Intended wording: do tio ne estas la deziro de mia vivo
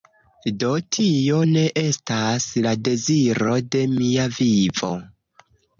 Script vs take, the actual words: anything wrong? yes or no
no